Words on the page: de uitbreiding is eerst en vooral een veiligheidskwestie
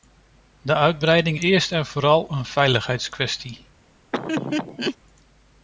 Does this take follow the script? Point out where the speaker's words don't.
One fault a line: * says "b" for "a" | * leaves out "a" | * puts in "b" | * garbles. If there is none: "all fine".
* leaves out "is"